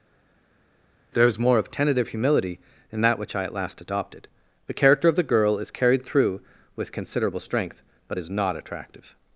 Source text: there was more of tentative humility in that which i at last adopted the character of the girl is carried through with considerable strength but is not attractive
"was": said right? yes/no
no